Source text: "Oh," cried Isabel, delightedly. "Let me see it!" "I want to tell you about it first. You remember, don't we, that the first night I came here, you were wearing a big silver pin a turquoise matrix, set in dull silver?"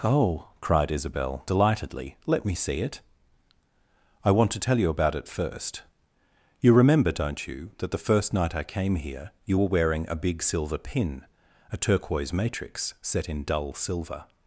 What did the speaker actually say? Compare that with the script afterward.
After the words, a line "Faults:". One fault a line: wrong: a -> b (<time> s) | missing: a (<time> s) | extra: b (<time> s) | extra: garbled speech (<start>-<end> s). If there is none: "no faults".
"Oh," cried Isabel, delightedly. "Let me see it!" "I want to tell you about it first. You remember, don't you, that the first night I came here, you were wearing a big silver pin a turquoise matrix, set in dull silver?"
Faults:
wrong: we -> you (7.5 s)